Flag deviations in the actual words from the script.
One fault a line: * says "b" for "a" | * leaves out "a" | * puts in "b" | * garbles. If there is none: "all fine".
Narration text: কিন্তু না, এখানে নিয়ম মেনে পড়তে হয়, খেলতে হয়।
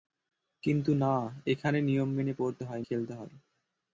all fine